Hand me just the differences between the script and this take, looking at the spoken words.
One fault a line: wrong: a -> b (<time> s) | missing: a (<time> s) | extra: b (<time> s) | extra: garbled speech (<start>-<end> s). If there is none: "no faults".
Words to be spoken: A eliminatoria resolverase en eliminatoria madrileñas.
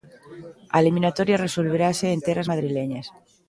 wrong: eliminatoria -> terras (2.3 s)